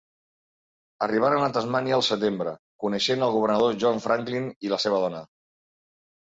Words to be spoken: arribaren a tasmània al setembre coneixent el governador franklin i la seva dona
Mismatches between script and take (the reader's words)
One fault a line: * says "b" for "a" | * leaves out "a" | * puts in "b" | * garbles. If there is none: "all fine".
* puts in "john"